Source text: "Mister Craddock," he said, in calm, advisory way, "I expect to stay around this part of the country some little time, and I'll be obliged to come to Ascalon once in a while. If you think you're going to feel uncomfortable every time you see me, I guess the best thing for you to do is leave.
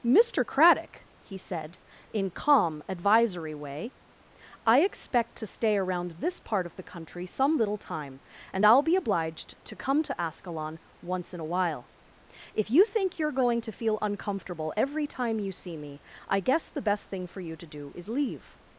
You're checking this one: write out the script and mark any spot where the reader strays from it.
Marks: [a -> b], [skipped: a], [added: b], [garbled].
"Mister Craddock," he said, in calm, advisory way, "I expect to stay around this part of the country some little time, and I'll be obliged to come to Ascalon once in a while. If you think you're going to feel uncomfortable every time you see me, I guess the best thing for you to do is leave.